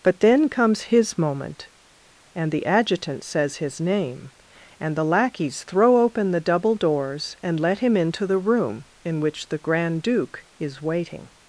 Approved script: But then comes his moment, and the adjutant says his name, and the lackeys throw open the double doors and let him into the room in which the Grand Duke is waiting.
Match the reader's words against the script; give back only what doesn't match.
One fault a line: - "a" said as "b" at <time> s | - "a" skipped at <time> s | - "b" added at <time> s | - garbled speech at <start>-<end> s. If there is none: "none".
none